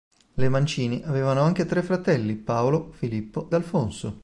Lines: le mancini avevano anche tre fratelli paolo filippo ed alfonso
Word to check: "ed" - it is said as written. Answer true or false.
false